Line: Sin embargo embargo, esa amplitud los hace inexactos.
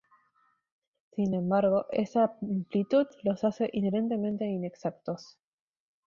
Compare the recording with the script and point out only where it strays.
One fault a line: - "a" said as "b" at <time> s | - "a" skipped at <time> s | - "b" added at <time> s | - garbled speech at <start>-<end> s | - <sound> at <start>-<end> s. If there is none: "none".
- "embargo" skipped at 1.9 s
- "inherentemente" added at 3.7 s